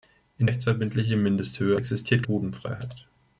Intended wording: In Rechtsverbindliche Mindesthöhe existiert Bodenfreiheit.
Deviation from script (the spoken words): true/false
false